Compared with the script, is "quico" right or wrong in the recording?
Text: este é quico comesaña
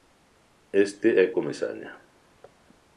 wrong